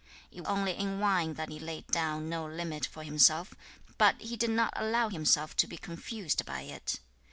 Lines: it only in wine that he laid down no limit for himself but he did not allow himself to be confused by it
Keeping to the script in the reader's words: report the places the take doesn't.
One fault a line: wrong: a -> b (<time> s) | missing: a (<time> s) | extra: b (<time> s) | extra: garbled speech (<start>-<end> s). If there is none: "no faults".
no faults